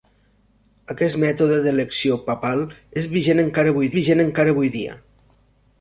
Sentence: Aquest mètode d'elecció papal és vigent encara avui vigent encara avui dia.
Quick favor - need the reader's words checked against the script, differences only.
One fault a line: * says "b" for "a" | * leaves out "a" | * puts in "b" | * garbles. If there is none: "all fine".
all fine